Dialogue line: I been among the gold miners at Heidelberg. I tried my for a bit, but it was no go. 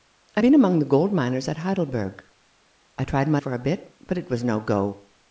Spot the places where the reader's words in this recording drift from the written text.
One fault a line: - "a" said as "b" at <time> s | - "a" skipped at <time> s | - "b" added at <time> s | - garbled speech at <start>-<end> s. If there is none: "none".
none